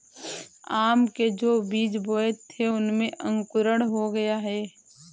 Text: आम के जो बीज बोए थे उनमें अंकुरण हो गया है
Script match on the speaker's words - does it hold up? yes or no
yes